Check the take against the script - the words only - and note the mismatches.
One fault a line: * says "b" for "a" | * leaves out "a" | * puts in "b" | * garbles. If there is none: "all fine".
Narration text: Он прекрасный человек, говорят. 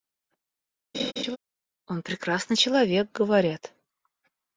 all fine